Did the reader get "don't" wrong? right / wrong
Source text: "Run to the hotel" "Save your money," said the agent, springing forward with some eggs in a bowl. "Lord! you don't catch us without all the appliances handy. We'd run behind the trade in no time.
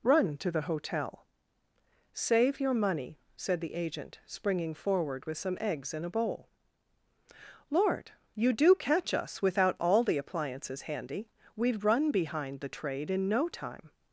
wrong